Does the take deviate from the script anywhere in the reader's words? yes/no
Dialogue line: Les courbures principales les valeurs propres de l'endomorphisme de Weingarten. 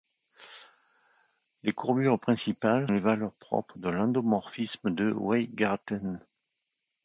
no